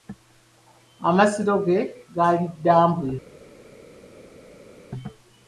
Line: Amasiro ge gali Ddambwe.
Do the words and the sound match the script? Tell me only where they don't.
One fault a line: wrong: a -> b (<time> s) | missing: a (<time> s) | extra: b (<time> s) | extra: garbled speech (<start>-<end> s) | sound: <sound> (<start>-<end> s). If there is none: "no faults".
no faults